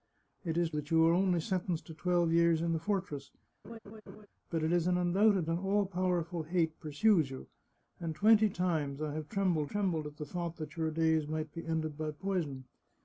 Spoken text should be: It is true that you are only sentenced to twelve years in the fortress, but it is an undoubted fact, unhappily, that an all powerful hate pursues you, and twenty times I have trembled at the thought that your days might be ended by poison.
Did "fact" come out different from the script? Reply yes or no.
yes